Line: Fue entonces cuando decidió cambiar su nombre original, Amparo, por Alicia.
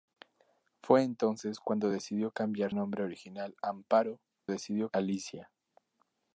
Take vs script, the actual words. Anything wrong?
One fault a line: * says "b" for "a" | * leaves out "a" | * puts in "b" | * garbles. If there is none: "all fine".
* leaves out "su"
* says "decidió" for "por"